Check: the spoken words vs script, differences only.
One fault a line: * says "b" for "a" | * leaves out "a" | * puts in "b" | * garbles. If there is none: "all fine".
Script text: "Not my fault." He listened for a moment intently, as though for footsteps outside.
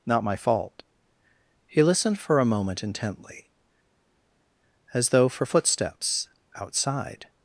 all fine